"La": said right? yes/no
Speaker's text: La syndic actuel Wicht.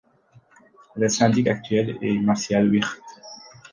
no